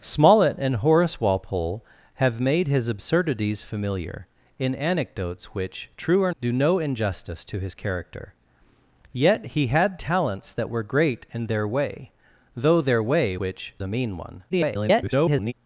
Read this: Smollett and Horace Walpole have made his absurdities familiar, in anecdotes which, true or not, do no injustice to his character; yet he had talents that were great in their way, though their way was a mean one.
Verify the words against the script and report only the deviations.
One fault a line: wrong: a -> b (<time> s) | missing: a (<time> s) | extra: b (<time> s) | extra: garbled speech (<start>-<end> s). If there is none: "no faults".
missing: not (6.3 s)
wrong: was -> which (13.4 s)
extra: garbled speech (14.5-15.5 s)